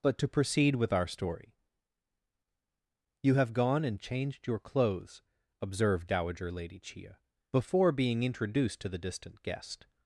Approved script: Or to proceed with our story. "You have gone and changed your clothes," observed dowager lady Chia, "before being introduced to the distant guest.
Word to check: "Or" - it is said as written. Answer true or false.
false